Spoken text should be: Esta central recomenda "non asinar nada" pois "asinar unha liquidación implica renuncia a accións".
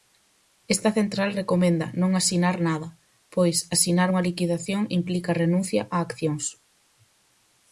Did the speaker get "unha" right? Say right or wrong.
right